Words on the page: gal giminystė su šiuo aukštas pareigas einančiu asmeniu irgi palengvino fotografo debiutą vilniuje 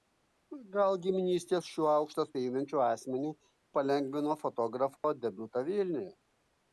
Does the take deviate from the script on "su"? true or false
true